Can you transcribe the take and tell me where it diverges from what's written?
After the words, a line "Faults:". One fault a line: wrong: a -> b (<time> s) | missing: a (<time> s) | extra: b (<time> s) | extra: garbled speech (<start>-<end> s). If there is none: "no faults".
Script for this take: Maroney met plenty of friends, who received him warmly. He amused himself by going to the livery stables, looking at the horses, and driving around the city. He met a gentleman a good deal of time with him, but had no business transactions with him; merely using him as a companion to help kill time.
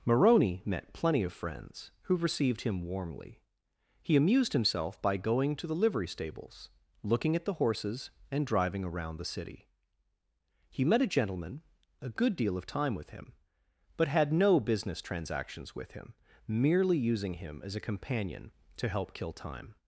Maroney met plenty of friends, who received him warmly. He amused himself by going to the livery stables, looking at the horses, and driving around the city. He met a gentleman a good deal of time with him, but had no business transactions with him; merely using him as a companion to help kill time.
Faults:
no faults